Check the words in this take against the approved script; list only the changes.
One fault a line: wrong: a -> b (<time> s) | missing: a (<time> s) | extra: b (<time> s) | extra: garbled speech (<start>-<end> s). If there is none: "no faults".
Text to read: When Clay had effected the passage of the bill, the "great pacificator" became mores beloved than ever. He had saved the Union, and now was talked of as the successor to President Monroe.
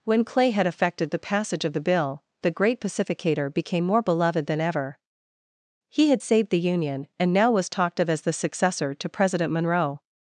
wrong: mores -> more (3.8 s)